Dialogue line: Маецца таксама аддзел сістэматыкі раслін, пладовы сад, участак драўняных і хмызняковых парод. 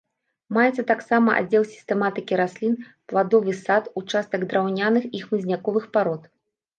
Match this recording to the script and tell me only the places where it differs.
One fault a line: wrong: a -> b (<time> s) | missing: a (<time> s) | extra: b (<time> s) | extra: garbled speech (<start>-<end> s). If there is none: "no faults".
no faults